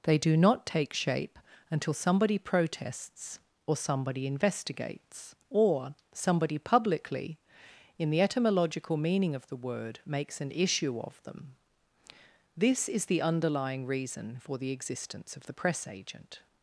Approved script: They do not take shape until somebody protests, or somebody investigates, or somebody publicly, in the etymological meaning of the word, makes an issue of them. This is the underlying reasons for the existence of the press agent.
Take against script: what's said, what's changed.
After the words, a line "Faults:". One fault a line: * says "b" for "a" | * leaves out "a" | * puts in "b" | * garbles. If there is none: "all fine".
They do not take shape until somebody protests, or somebody investigates, or somebody publicly, in the etymological meaning of the word, makes an issue of them. This is the underlying reason for the existence of the press agent.
Faults:
* says "reason" for "reasons"